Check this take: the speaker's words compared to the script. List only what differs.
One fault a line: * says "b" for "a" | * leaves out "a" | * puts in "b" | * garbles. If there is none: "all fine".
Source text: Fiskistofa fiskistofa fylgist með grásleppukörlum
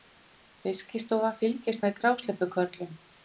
* leaves out "fiskistofa"